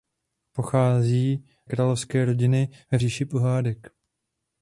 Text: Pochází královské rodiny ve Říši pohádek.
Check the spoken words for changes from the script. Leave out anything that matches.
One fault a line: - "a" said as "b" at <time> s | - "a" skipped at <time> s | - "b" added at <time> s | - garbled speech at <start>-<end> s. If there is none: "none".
none